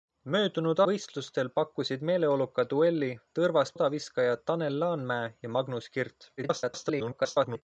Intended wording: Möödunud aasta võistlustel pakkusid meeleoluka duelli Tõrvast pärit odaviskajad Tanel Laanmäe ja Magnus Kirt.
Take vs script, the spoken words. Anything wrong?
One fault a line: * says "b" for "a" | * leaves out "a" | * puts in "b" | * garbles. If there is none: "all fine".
* leaves out "aasta"
* leaves out "pärit"
* garbles